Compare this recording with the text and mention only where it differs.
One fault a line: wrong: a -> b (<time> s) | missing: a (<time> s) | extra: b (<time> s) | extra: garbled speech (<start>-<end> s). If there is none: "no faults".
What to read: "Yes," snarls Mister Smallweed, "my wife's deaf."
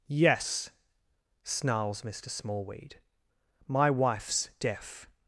no faults